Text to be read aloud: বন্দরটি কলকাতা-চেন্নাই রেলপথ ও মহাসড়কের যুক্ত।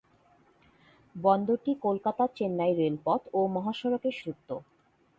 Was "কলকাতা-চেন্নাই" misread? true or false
false